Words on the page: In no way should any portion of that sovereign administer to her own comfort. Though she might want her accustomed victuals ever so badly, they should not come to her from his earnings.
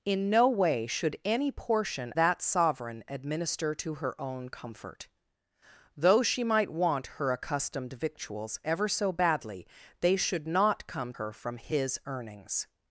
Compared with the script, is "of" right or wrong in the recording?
wrong